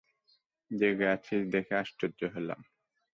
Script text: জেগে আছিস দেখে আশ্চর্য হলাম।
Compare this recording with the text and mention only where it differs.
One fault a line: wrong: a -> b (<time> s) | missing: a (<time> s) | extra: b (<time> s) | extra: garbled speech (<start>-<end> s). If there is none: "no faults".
no faults